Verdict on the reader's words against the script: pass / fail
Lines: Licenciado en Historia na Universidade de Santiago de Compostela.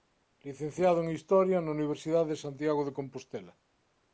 pass